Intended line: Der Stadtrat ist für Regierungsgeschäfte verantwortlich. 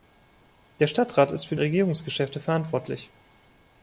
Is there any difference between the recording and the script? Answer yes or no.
no